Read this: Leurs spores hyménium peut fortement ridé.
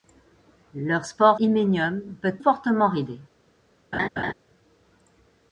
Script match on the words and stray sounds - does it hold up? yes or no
no